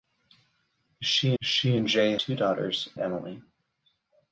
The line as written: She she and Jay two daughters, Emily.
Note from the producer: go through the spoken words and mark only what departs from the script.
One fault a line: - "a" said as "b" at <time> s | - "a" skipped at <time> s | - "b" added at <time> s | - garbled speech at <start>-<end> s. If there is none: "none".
none